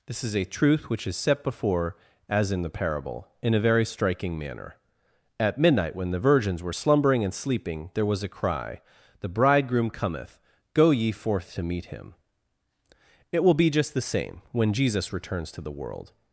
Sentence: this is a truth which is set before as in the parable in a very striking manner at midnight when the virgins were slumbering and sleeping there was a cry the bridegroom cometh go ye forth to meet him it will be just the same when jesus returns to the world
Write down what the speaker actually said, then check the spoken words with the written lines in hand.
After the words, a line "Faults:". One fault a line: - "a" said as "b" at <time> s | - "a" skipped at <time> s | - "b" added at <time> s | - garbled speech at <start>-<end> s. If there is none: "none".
this is a truth which is set before as in the parable in a very striking manner at midnight when the virgins were slumbering and sleeping there was a cry the bridegroom cometh go ye forth to meet him it will be just the same when jesus returns to the world
Faults:
none